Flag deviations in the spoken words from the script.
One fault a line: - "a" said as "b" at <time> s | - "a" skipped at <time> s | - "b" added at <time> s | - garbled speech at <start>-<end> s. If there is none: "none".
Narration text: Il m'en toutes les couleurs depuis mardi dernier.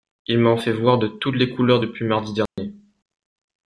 - "fait voir de" added at 0.6 s